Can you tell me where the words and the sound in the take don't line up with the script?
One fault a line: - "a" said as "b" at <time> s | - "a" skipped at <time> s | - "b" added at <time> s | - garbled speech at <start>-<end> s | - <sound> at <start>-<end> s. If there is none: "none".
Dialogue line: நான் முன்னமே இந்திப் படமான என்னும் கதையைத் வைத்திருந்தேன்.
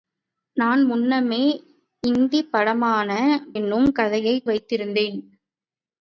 none